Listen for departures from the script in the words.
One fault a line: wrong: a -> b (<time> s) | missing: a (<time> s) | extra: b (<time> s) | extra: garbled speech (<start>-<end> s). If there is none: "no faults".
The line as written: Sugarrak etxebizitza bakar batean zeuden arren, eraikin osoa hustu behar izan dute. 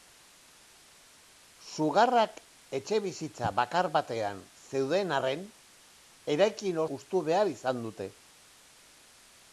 missing: osoa (6.8 s)